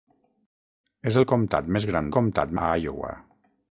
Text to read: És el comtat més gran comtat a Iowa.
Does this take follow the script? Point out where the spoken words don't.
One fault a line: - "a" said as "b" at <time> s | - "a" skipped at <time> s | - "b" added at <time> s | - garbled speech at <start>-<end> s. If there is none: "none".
none